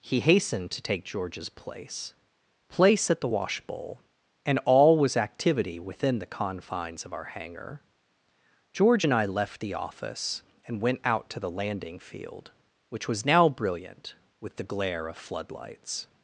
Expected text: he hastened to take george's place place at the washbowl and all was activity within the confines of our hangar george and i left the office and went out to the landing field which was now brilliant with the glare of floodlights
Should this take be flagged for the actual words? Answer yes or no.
no